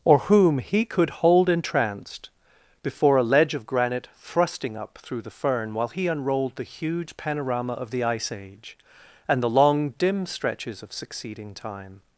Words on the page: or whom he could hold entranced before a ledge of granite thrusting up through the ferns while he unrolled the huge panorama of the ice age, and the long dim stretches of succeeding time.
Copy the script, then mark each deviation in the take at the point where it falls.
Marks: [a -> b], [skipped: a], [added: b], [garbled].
or whom he could hold entranced before a ledge of granite thrusting up through the [ferns -> fern] while he unrolled the huge panorama of the ice age, and the long dim stretches of succeeding time.